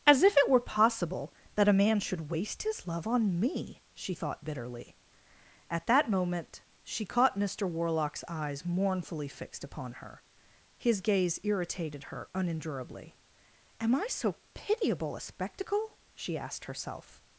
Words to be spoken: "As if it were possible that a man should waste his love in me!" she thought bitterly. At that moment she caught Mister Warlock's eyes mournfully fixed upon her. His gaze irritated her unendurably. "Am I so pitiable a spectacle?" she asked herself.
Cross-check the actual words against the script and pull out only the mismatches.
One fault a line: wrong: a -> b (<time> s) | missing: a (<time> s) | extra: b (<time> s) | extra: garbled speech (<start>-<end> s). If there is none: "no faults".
wrong: in -> on (3.0 s)